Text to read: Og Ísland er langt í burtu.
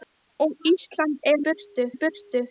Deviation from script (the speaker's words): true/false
true